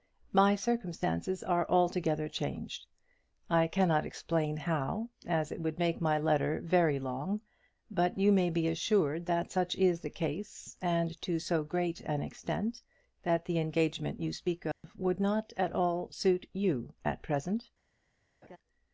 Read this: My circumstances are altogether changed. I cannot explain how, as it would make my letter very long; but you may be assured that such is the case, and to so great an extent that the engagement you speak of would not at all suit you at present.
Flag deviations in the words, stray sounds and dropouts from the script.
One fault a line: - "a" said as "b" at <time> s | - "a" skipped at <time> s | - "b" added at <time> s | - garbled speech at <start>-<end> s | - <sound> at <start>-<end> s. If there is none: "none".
- dropout at 14.7-14.8 s
- laugh at 18.4-18.6 s